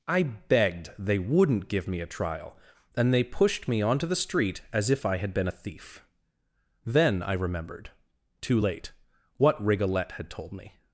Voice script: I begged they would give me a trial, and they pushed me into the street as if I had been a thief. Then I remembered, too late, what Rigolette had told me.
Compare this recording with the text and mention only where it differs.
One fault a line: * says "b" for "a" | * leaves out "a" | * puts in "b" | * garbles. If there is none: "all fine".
* says "wouldn't" for "would"
* says "onto" for "into"